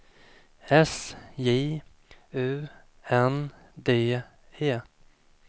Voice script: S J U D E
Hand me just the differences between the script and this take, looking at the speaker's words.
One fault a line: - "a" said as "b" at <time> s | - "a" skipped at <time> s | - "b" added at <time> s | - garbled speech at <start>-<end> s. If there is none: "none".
- "N" added at 3.1 s